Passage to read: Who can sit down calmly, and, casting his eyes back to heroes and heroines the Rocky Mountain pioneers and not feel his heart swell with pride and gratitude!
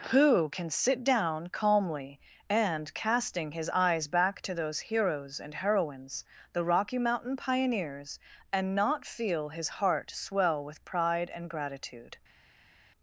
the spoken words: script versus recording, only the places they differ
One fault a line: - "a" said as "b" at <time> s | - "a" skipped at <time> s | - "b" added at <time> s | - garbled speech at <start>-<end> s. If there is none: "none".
- "those" added at 4.5 s